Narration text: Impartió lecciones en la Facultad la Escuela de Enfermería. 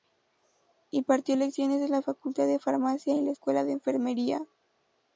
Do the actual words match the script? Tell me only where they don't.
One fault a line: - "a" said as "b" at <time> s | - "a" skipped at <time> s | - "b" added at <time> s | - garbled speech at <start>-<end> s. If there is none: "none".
- "de Farmacia y" added at 2.5 s